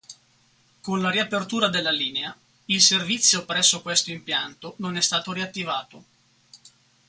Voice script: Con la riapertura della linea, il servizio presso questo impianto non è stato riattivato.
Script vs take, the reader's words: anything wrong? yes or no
no